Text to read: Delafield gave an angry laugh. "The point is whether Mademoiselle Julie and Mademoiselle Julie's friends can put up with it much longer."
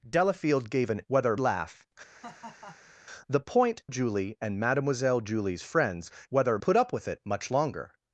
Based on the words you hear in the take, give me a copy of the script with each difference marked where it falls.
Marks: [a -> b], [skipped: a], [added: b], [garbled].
Delafield gave an [angry -> whether] laugh. "The point [skipped: is whether Mademoiselle] Julie and Mademoiselle Julie's friends [can -> whether] put up with it much longer."